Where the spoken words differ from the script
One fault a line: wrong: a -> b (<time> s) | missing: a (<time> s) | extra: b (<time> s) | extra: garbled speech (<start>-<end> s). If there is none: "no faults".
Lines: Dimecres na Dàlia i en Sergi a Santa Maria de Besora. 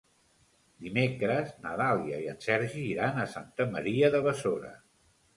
extra: iran (2.9 s)